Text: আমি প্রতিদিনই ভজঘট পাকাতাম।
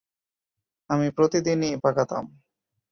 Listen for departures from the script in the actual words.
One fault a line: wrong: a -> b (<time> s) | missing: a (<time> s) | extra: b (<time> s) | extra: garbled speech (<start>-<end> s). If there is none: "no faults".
missing: ভজঘট (1.7 s)